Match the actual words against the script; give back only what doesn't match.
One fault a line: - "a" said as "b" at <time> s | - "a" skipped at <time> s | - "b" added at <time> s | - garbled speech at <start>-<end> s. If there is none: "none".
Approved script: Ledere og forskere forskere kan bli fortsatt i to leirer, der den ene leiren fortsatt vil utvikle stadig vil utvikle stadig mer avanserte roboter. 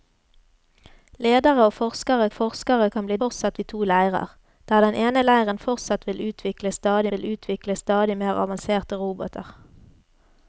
none